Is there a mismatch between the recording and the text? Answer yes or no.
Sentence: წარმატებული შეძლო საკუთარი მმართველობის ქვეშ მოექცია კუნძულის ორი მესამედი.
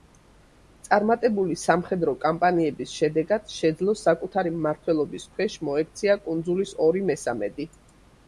yes